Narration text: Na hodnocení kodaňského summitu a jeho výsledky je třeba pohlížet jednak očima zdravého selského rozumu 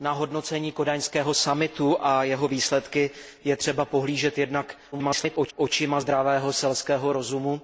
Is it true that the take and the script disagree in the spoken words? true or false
true